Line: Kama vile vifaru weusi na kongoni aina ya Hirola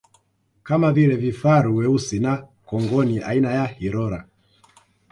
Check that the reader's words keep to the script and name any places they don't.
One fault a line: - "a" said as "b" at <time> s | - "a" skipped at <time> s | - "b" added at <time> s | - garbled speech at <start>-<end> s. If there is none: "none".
none